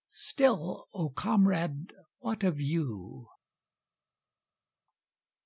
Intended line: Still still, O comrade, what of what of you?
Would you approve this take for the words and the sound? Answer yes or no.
no